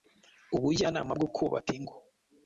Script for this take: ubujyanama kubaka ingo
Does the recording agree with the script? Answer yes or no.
no